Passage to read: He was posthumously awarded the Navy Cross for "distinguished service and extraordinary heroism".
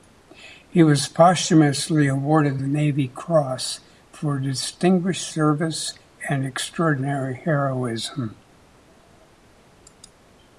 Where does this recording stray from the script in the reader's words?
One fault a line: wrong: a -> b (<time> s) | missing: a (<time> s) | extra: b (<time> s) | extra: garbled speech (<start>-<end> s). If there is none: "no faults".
no faults